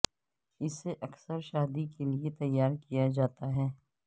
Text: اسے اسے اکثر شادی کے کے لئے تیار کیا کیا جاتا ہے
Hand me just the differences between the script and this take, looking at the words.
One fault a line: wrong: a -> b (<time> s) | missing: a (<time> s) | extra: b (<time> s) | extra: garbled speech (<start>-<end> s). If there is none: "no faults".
missing: اسے (0.9 s)
missing: کے (2.0 s)
missing: کیا (3.1 s)